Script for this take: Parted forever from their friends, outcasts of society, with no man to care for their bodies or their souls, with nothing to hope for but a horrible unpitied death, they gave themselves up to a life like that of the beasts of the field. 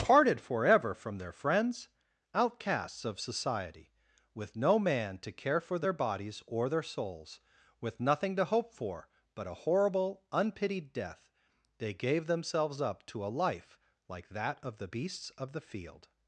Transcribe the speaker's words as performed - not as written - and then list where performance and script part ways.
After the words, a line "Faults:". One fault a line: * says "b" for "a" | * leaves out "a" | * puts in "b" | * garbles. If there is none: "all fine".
Parted forever from their friends, outcasts of society, with no man to care for their bodies or their souls, with nothing to hope for but a horrible unpitied death, they gave themselves up to a life like that of the beasts of the field.
Faults:
all fine